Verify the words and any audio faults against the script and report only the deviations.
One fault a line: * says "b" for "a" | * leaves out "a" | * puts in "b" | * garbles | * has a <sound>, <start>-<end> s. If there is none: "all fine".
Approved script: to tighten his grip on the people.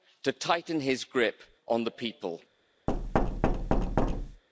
* has a thud, 2.9-4.4 s